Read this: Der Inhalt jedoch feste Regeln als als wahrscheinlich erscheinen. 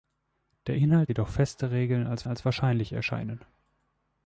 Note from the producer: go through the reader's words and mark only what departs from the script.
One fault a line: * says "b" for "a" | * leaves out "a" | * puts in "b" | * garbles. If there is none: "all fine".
all fine